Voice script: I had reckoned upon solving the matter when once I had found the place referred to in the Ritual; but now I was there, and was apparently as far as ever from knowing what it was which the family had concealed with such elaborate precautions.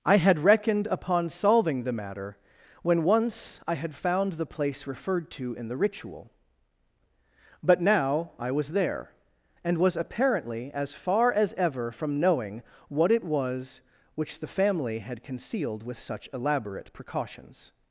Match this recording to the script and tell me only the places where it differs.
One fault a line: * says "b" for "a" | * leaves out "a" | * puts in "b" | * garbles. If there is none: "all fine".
all fine